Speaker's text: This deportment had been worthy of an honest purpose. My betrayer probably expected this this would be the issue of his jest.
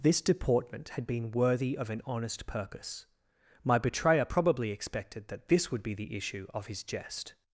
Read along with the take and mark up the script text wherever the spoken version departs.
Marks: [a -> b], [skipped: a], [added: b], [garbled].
This deportment had been worthy of an honest purpose. My betrayer probably expected [this -> that] this would be the issue of his jest.